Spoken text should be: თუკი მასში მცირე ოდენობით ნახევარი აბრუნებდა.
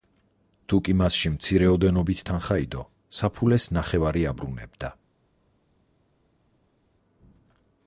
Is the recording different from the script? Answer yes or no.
yes